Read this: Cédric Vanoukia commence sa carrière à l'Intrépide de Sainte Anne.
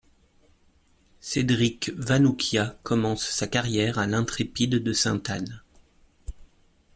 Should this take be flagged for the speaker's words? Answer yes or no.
no